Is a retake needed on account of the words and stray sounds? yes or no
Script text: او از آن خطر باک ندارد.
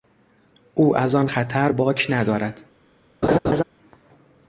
yes